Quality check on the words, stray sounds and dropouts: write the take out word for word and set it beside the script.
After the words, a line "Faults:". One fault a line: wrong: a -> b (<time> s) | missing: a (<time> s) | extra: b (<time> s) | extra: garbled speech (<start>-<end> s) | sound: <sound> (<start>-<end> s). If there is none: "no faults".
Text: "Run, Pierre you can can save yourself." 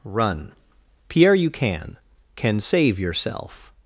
"Run, Pierre you can can save yourself."
Faults:
no faults